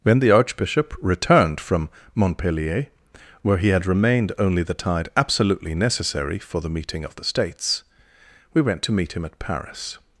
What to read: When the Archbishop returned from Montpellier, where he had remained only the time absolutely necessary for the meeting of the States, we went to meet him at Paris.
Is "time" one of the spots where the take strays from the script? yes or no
yes